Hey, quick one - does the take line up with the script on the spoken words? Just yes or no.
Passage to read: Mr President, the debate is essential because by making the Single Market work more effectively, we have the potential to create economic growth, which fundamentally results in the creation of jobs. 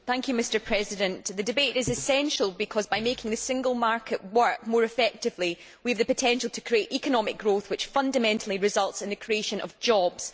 yes